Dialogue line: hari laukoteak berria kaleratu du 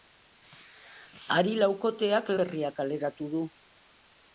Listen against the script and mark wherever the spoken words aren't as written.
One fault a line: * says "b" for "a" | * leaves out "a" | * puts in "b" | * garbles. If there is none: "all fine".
all fine